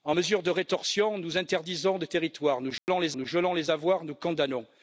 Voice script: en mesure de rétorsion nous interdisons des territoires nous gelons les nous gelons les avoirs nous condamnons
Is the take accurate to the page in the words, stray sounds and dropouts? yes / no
no